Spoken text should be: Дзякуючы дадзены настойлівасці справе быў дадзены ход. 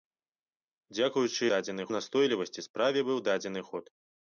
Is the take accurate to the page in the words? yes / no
yes